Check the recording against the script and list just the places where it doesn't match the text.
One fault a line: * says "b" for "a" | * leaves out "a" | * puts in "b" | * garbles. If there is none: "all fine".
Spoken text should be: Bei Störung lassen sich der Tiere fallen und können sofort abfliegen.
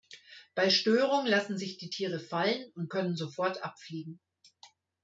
* says "die" for "der"